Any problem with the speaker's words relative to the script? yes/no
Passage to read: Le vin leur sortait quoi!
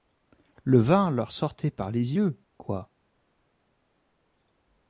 yes